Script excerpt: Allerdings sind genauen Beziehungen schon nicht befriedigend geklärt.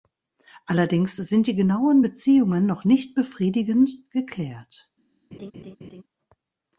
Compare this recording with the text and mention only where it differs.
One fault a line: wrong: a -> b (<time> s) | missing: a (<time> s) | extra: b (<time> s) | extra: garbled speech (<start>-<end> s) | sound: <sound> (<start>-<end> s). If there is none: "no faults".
extra: die (1.5 s)
wrong: schon -> noch (2.7 s)
sound: laugh (5.3-6.0 s)